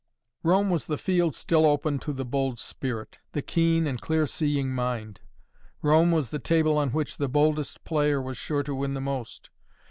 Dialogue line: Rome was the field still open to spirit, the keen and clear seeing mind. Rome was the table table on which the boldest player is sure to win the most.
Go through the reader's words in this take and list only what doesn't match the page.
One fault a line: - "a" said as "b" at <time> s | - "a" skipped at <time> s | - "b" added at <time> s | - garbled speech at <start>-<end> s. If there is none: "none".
- "the bold" added at 2.1 s
- "table" skipped at 6.8 s
- "is" said as "was" at 8.2 s